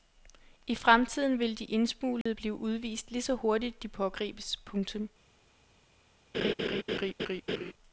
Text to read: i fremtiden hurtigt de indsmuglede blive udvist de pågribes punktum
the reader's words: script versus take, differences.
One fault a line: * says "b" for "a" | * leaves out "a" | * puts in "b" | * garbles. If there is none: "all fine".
* says "vil" for "hurtigt"
* puts in "lige så hurtigt"